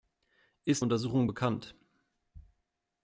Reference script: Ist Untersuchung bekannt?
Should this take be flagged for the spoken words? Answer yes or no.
no